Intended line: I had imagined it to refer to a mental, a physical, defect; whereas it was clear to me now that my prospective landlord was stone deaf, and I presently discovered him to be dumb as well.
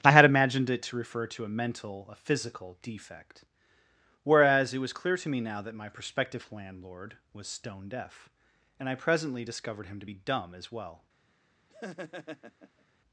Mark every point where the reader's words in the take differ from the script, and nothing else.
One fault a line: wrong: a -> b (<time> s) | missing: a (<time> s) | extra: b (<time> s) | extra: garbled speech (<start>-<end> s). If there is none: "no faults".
no faults